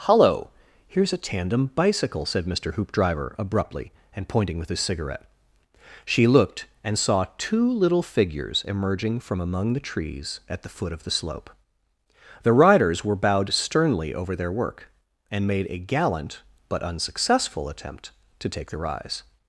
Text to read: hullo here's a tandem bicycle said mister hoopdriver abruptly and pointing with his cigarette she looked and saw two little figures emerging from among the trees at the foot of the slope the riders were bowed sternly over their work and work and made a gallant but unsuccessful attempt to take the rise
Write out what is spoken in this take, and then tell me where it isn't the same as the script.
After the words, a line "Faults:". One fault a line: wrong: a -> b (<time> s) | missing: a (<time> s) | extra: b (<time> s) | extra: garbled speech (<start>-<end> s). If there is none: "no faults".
hullo here's a tandem bicycle said mister hoopdriver abruptly and pointing with his cigarette she looked and saw two little figures emerging from among the trees at the foot of the slope the riders were bowed sternly over their work and made a gallant but unsuccessful attempt to take the rise
Faults:
missing: work and (15.5 s)